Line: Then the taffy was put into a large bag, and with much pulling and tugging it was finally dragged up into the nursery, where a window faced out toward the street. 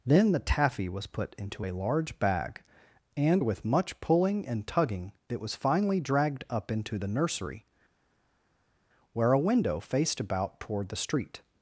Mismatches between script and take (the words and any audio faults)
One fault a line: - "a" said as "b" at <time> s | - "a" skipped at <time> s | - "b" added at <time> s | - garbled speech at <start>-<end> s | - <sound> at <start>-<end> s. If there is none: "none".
- "out" said as "about" at 10.2 s